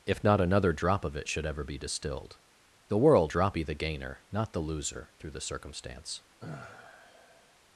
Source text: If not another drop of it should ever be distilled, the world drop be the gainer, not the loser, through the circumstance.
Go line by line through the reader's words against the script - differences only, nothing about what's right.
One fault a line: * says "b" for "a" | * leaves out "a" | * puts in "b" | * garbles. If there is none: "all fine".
all fine